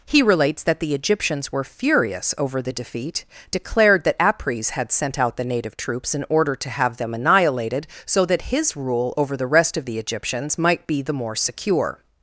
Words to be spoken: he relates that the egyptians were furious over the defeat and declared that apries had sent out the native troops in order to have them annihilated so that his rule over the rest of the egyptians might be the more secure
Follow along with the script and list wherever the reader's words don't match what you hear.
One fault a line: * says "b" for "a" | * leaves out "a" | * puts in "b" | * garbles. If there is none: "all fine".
* leaves out "and"